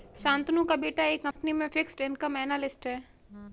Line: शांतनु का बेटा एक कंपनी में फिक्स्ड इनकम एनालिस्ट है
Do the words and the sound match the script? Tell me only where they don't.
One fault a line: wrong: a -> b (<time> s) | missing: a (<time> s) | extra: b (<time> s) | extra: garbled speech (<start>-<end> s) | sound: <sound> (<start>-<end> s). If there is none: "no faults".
sound: dropout (1.3-1.4 s)